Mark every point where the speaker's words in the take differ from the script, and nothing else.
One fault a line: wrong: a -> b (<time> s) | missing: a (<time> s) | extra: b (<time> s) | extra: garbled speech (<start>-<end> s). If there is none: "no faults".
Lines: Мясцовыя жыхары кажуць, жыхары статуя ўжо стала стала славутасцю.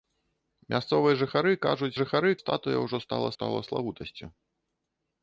no faults